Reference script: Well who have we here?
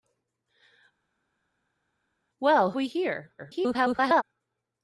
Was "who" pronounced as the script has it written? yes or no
no